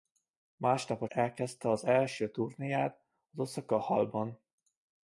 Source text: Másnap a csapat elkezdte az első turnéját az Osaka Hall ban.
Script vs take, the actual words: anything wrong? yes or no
yes